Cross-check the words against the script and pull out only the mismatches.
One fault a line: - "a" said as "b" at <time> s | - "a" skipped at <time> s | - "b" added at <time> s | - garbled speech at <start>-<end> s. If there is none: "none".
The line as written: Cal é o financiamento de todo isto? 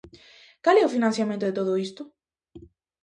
none